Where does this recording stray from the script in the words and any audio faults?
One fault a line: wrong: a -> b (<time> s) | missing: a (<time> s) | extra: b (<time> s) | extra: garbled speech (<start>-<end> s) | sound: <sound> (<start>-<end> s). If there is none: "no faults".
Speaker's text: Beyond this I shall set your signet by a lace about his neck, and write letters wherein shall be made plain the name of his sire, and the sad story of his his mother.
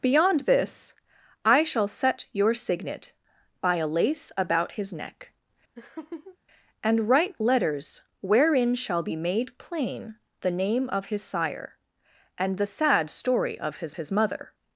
sound: laugh (5.8-6.4 s)